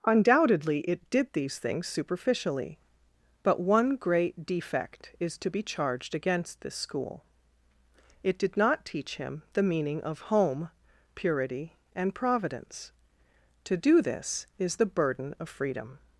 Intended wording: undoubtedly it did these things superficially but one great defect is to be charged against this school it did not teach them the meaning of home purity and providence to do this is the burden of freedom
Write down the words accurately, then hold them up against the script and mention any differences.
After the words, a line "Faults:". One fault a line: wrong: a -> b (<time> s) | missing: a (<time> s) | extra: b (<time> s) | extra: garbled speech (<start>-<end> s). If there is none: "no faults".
undoubtedly it did these things superficially but one great defect is to be charged against this school it did not teach him the meaning of home purity and providence to do this is the burden of freedom
Faults:
wrong: them -> him (9.2 s)